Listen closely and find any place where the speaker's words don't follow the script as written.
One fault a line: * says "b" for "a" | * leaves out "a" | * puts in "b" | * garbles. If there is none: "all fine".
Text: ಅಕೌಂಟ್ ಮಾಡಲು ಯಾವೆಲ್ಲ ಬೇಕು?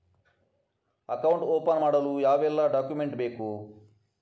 * puts in "ಓಪನ್"
* puts in "ಡಾಕ್ಯುಮೆಂಟ್"